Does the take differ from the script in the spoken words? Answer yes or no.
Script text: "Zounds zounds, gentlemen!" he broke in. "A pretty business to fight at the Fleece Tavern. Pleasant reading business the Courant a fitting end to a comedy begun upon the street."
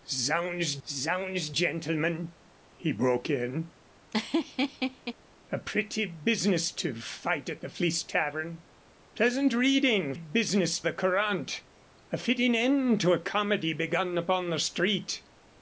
no